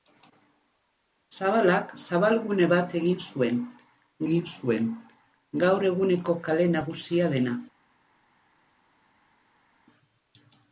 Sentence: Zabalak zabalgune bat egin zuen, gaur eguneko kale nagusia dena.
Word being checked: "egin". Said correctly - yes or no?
yes